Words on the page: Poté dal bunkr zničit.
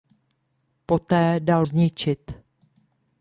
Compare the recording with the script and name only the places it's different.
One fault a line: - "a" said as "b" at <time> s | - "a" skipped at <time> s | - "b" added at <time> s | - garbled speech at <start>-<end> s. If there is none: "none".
- "bunkr" skipped at 1.6 s